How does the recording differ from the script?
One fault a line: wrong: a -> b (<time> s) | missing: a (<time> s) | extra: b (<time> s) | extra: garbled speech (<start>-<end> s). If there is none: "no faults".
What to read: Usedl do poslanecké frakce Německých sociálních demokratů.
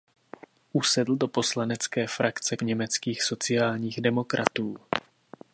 no faults